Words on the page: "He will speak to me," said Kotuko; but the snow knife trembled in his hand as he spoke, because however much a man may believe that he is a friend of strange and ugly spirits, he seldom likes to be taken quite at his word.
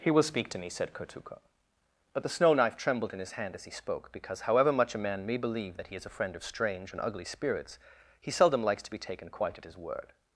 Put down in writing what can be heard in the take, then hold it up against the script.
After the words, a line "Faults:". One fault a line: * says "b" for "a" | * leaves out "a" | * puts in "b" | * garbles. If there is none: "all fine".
"He will speak to me," said Kotuko; but the snow knife trembled in his hand as he spoke, because however much a man may believe that he is a friend of strange and ugly spirits, he seldom likes to be taken quite at his word.
Faults:
all fine